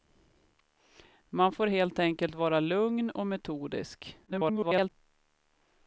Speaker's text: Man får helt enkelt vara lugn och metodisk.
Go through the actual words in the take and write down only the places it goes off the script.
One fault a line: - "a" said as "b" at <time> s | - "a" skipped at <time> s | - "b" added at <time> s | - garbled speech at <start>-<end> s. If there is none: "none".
- garbled speech at 4.3-4.9 s